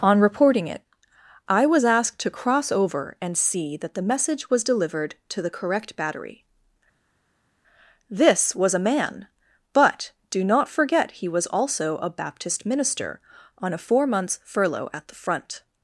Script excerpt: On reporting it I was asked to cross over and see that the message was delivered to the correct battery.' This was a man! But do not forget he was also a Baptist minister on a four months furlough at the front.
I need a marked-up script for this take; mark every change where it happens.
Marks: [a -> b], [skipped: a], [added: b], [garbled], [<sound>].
On reporting it I was asked to cross over and see that the message was delivered to the correct battery.' This was a man! But do not forget he was also a Baptist minister on a four months furlough at the front.